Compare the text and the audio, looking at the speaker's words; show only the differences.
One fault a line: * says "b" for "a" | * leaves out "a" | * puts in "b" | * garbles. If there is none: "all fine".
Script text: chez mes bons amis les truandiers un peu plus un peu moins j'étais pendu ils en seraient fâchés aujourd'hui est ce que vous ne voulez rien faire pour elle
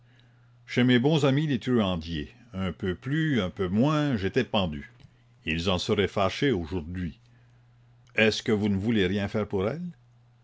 all fine